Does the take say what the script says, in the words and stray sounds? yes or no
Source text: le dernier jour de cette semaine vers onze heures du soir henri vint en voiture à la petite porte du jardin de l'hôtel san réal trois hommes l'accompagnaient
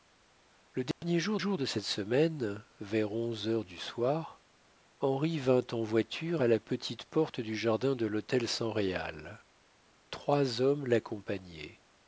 no